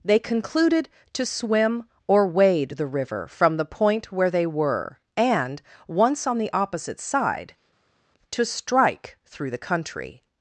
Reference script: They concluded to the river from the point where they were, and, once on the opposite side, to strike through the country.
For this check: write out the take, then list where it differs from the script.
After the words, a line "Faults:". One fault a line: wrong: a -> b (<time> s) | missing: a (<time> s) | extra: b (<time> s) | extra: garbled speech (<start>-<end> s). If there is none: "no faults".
They concluded to swim or wade the river from the point where they were, and, once on the opposite side, to strike through the country.
Faults:
extra: swim or wade (1.2 s)